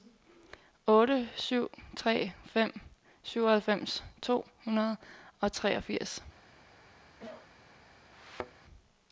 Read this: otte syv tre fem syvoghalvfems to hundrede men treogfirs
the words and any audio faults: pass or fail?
fail